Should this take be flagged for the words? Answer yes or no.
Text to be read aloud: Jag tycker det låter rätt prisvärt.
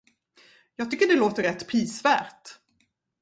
no